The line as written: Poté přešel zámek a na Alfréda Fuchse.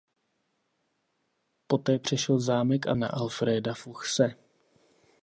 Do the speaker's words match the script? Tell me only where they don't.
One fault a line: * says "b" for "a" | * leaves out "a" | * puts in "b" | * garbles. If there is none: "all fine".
all fine